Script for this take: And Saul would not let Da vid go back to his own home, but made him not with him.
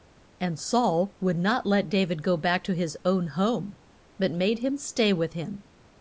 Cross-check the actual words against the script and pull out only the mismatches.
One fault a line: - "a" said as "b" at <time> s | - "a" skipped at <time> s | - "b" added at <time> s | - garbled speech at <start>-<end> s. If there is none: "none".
- "not" said as "stay" at 4.8 s